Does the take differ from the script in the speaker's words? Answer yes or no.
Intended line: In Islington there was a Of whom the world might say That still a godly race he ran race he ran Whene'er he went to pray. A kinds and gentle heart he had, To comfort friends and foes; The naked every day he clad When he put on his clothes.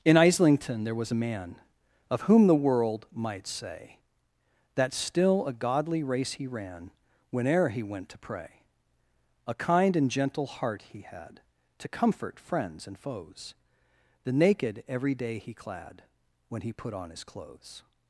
yes